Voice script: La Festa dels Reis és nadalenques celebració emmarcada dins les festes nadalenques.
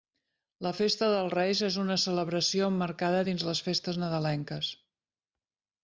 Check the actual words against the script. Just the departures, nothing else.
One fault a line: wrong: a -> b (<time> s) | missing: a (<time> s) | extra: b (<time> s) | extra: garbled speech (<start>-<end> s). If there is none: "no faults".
wrong: nadalenques -> una (1.8 s)